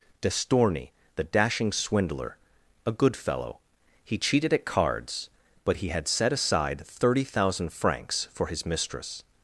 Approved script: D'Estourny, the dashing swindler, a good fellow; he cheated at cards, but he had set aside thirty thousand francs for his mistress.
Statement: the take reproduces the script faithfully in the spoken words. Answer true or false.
true